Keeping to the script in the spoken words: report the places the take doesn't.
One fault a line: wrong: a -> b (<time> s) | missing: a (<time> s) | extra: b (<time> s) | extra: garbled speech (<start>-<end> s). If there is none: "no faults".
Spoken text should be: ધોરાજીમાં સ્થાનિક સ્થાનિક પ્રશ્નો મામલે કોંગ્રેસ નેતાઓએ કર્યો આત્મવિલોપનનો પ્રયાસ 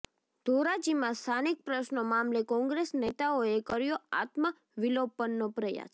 missing: સ્થાનિક (1.6 s)